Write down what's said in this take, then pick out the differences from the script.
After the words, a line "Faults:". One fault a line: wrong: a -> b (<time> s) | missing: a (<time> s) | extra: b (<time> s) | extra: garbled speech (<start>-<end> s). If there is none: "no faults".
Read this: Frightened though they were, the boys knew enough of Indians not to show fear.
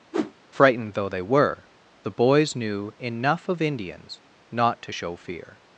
Frightened though they were, the boys knew enough of Indians not to show fear.
Faults:
no faults